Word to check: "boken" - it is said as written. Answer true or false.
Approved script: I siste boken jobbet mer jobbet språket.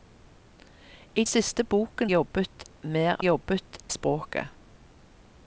true